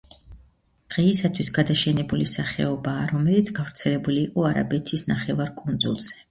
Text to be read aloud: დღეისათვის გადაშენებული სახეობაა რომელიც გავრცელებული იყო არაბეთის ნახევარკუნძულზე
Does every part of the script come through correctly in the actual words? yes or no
yes